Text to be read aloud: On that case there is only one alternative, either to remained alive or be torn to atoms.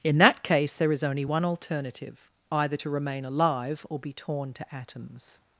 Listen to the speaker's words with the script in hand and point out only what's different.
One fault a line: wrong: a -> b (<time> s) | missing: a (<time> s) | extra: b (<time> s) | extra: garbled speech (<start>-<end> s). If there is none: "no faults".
wrong: On -> In (0.0 s)
wrong: remained -> remain (2.9 s)